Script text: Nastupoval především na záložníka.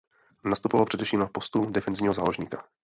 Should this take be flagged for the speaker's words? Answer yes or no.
yes